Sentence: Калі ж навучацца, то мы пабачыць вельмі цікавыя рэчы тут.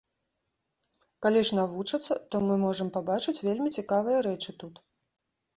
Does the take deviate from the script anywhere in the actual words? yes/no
yes